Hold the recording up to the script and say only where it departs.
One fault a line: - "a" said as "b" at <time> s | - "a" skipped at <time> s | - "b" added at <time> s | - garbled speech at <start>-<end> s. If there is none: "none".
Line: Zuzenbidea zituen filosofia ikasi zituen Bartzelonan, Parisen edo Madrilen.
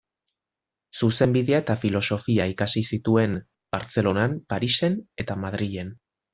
- "zituen" said as "eta" at 1.6 s
- "edo" said as "eta" at 5.3 s